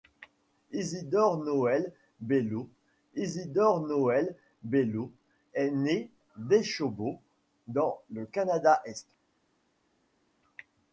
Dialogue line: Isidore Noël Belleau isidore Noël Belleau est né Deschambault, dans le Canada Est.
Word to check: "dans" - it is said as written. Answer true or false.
true